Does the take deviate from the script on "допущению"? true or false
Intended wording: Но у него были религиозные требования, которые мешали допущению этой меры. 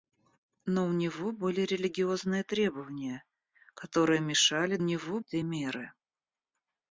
true